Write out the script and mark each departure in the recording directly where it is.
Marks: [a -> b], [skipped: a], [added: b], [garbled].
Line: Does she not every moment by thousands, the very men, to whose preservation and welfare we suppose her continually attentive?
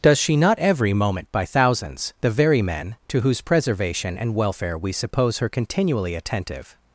Does she not every moment by thousands, the very men, to whose preservation and welfare we suppose her continually attentive?